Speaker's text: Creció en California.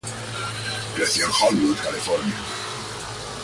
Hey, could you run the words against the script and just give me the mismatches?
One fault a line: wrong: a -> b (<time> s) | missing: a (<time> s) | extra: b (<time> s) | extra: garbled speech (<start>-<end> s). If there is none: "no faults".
extra: Hollywood (1.3 s)